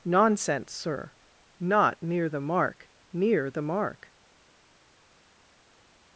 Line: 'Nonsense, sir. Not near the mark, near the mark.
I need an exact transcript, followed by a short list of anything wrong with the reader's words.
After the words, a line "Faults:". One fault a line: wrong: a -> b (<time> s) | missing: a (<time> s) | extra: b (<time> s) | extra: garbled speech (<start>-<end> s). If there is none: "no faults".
'Nonsense, sir. Not near the mark, near the mark.
Faults:
no faults